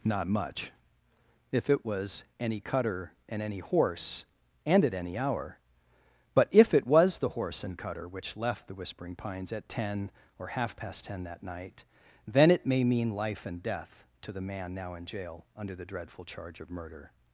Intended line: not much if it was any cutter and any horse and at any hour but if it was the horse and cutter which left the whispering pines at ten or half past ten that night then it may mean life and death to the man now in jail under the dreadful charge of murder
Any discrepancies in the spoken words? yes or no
no